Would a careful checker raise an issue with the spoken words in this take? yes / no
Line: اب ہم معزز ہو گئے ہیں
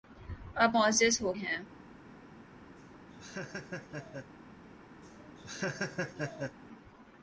yes